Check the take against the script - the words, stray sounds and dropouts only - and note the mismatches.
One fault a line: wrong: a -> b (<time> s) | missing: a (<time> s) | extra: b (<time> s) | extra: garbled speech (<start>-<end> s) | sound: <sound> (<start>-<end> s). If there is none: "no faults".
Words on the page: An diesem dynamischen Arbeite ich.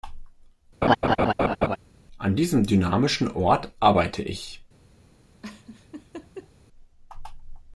sound: laugh (0.8-1.8 s)
extra: Ort (3.3 s)
sound: laugh (5.4-6.5 s)